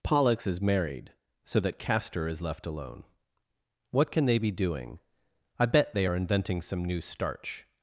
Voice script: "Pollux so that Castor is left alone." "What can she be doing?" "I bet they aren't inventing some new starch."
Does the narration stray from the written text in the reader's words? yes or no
yes